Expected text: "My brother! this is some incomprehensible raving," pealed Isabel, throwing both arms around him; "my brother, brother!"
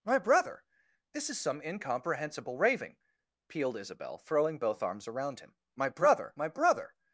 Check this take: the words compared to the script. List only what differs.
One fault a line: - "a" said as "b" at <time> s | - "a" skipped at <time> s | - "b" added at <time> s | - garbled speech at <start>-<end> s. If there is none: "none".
- "my" added at 6.4 s